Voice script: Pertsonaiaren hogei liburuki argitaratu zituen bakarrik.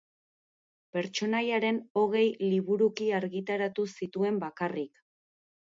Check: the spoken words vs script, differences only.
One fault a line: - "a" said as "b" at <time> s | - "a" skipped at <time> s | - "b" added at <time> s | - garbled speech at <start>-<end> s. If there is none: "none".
none